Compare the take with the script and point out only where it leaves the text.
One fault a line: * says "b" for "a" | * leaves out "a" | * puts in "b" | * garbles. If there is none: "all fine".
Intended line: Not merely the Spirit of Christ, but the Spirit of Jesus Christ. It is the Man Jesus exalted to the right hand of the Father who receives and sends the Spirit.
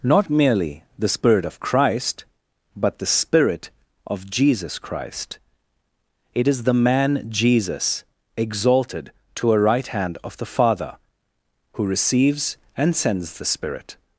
* says "a" for "the"